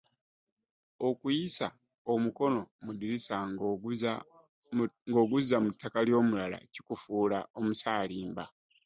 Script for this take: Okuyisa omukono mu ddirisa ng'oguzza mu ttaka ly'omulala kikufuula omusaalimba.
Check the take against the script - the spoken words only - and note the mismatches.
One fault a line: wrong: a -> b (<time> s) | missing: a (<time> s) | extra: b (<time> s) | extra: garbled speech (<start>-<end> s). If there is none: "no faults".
no faults